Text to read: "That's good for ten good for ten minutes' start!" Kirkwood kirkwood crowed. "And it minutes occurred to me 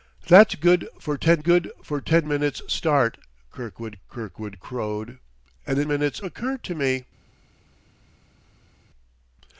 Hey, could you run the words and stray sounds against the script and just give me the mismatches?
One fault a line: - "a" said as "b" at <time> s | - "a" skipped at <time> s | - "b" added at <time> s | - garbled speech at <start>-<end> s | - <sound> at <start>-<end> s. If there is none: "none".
none